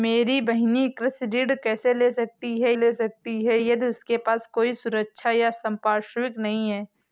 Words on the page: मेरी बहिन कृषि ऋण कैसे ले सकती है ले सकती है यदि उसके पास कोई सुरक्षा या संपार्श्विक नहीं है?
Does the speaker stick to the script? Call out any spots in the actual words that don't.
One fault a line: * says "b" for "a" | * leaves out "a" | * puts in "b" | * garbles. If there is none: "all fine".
all fine